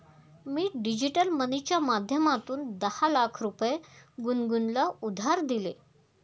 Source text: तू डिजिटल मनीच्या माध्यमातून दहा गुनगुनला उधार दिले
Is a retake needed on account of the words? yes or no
yes